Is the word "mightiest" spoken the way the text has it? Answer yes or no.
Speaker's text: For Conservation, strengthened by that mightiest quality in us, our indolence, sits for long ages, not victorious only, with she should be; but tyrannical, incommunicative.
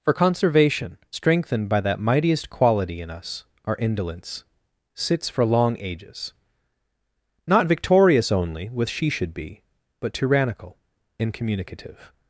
yes